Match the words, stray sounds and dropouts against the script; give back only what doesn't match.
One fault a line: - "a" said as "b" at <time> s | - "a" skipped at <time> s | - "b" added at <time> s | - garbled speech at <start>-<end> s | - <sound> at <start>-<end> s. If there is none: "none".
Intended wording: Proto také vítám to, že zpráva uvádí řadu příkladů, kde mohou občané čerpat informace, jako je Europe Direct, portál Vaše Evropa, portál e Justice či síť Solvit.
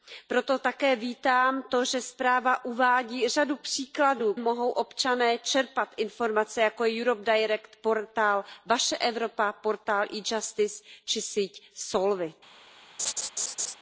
- "kde" skipped at 4.3 s
- laugh at 13.0-13.8 s